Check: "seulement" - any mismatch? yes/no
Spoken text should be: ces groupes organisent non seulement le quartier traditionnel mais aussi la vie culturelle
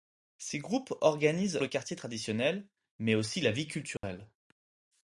yes